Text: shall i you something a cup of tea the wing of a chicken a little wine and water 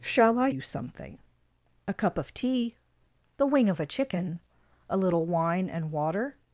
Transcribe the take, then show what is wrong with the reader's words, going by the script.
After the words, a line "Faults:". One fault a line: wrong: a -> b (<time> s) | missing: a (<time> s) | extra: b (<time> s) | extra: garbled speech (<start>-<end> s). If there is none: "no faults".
shall i you something a cup of tea the wing of a chicken a little wine and water
Faults:
no faults